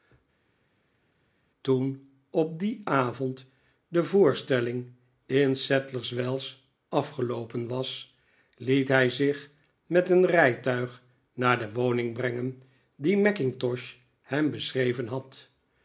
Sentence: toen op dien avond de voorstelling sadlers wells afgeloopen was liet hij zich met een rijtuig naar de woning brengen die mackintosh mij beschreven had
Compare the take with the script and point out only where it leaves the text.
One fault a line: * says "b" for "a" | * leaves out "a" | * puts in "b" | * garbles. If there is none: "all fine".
* puts in "in"
* says "hem" for "mij"